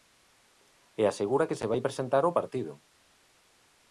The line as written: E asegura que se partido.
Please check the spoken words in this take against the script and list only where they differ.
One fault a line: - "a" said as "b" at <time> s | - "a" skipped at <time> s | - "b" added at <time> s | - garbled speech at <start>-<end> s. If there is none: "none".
- "vai presentar ao" added at 1.7 s